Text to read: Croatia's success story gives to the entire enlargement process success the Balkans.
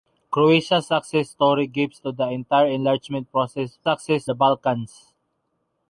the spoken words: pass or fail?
pass